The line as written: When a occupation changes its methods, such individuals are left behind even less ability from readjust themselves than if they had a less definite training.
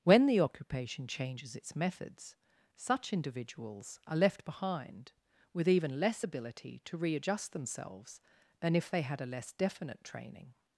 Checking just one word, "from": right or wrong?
wrong